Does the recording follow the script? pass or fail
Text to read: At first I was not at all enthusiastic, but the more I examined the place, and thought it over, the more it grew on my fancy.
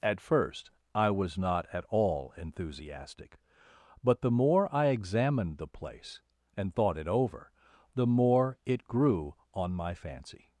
pass